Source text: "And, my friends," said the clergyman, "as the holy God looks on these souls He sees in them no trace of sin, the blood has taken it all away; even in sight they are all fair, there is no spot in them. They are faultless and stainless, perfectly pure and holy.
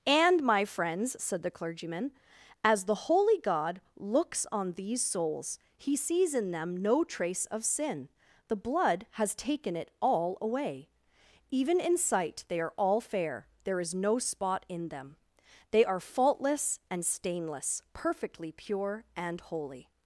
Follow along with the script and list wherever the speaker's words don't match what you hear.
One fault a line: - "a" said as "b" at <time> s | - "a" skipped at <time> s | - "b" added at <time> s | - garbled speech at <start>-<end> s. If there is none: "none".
none